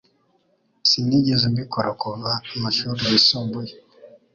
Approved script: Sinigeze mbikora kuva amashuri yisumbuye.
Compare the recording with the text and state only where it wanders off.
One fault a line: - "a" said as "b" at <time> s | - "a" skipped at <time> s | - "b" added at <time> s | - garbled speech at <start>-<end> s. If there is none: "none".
none